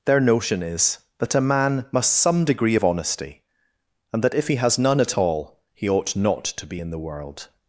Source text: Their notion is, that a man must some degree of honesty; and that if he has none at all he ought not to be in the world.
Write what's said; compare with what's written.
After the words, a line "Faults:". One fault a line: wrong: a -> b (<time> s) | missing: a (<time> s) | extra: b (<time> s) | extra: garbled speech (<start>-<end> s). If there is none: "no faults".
Their notion is, that a man must some degree of honesty; and that if he has none at all he ought not to be in the world.
Faults:
no faults